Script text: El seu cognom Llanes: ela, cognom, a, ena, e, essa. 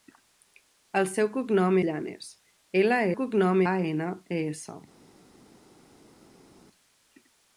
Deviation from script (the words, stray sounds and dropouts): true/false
false